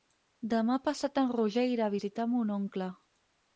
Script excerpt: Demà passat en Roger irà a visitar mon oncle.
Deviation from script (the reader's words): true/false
false